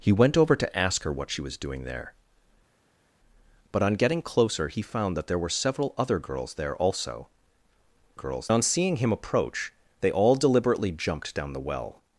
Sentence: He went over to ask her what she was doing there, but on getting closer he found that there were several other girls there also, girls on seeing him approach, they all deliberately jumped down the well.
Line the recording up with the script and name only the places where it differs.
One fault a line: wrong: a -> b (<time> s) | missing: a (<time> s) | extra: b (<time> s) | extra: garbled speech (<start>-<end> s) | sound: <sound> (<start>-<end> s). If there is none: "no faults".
no faults